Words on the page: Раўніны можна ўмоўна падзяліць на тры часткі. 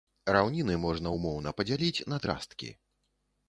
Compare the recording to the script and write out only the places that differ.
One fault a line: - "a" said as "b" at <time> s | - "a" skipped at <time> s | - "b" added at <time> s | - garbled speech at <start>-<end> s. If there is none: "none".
- "тры" skipped at 2.2 s